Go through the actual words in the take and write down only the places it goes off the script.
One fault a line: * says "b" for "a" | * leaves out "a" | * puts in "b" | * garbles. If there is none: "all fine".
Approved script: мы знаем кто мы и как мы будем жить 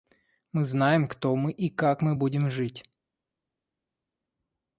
all fine